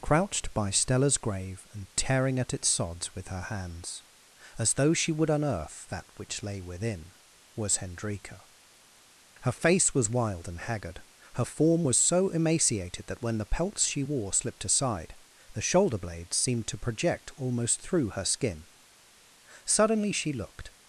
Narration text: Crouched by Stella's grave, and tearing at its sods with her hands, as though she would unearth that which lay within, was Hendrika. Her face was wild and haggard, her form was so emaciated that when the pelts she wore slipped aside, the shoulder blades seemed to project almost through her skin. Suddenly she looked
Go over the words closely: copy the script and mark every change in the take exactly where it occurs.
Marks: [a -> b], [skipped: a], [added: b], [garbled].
Crouched by Stella's grave, and tearing at its sods with her hands, as though she would unearth that which lay within, was Hendrika. Her face was wild and haggard, her form was so emaciated that when the pelts she wore slipped aside, the shoulder blades seemed to project almost through her skin. Suddenly she looked